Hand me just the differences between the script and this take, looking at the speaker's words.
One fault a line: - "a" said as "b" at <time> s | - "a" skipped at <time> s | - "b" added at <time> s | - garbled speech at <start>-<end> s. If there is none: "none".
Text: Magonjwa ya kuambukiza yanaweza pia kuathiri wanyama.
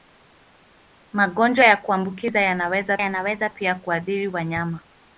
- "yanaweza" added at 3.0 s